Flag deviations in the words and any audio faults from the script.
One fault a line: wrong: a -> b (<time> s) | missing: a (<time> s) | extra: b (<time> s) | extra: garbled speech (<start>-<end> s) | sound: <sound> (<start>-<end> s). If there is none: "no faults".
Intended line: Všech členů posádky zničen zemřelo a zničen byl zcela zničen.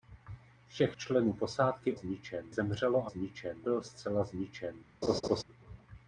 sound: laugh (5.0-5.4 s)